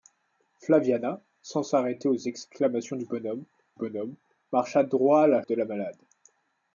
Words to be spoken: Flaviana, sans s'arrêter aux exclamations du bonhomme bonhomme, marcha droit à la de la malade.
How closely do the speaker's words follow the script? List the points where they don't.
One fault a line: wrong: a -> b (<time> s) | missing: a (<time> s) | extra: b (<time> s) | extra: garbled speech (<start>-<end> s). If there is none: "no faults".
no faults